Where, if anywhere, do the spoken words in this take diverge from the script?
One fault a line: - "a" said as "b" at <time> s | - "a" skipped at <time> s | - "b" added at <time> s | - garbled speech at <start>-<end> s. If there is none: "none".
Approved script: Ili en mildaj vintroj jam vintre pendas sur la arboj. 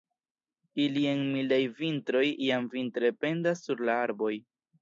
none